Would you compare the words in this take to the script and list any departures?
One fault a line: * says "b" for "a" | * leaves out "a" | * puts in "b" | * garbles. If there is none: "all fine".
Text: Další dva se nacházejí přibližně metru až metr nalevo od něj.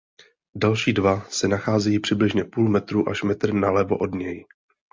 * puts in "půl"